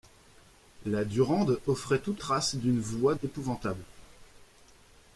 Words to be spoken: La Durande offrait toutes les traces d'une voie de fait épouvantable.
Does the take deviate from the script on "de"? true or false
true